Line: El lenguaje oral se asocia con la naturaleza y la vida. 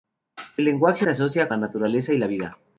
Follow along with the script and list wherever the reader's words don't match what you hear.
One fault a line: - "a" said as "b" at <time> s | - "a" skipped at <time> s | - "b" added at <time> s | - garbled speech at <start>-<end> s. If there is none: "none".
- "oral" skipped at 1.1 s
- "con" skipped at 1.5 s